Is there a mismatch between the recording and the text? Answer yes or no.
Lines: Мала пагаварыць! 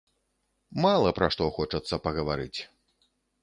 yes